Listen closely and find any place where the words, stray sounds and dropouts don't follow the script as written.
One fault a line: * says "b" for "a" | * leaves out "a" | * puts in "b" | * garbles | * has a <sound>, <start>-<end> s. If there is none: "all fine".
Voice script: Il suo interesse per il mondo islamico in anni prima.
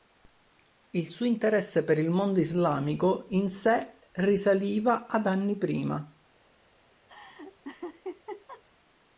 * puts in "sé risaliva ad"
* has a laugh, 7.1-8.6 s